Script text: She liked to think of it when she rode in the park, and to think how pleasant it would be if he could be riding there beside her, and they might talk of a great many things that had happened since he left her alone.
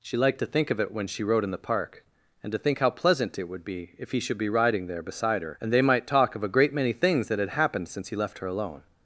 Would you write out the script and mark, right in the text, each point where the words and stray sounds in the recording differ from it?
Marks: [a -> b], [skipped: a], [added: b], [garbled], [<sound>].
She liked to think of it when she rode in the park, and to think how pleasant it would be if he [could -> should] be riding there beside her, and they might talk of a great many things that had happened since he left her alone.